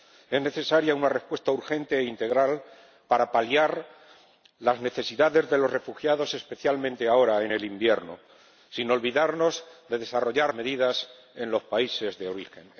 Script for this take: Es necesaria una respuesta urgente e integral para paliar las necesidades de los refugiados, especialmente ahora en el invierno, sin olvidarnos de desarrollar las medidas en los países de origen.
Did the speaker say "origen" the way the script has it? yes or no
yes